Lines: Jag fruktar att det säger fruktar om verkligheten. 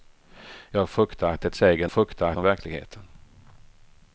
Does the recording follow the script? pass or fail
pass